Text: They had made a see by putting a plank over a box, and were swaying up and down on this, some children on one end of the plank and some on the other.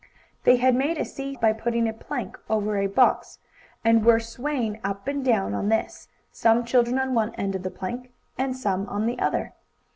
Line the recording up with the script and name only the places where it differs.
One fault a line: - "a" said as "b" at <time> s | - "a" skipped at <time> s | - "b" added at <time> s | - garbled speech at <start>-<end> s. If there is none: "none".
none